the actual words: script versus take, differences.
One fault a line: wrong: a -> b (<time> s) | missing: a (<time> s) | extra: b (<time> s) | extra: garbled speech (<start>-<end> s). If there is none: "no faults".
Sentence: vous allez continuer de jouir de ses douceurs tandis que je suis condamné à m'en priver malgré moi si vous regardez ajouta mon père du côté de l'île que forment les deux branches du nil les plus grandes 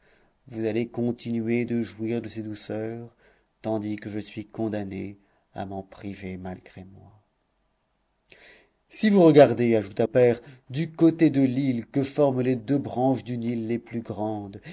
missing: mon (10.1 s)